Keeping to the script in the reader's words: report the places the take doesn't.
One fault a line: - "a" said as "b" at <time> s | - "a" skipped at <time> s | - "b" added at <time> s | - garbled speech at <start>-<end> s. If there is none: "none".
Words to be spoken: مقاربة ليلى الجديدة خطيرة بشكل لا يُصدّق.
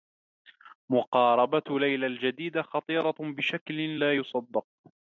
none